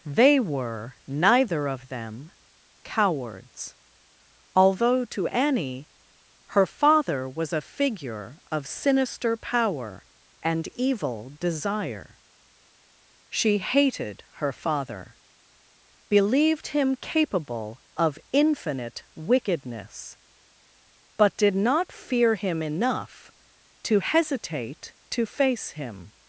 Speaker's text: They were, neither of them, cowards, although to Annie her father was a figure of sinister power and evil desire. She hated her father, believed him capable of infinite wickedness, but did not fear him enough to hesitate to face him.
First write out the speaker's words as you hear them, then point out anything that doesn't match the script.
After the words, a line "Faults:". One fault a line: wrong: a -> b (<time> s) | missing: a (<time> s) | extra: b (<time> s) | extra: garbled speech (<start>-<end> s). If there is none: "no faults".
They were, neither of them, cowards, although to Annie her father was a figure of sinister power and evil desire. She hated her father, believed him capable of infinite wickedness, but did not fear him enough to hesitate to face him.
Faults:
no faults